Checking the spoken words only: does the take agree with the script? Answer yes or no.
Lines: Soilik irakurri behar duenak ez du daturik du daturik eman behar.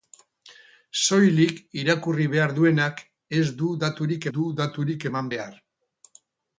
yes